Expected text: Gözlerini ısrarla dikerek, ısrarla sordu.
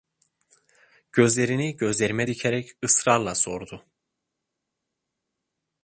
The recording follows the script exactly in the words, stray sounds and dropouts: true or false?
false